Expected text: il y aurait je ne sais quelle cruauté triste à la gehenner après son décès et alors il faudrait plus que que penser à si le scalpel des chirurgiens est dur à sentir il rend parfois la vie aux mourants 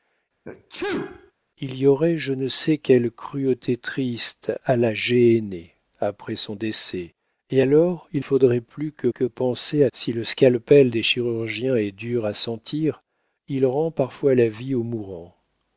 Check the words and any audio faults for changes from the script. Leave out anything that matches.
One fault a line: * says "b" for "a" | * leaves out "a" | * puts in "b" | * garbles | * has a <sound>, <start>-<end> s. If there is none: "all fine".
* has a sneeze, 0.4-1.3 s